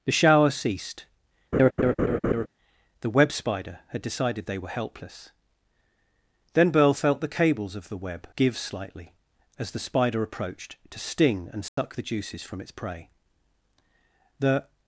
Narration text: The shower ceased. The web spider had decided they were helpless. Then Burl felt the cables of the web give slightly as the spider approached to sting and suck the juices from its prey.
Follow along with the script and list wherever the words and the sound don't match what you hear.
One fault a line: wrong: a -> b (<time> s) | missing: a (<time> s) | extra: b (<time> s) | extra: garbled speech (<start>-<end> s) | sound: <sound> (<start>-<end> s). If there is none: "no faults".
sound: laugh (1.5-2.5 s)
sound: dropout (11.7-11.8 s)
extra: The (14.4 s)